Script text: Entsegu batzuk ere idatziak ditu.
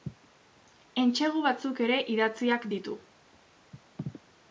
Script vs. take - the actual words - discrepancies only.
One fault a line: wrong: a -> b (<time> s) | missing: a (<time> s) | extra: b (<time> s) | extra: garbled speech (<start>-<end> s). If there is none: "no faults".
no faults